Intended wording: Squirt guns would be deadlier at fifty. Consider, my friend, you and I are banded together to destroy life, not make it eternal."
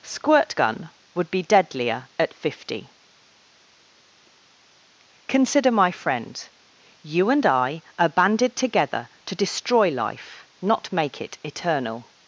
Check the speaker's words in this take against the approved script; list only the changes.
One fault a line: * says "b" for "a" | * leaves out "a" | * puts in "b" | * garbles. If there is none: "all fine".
* says "gun" for "guns"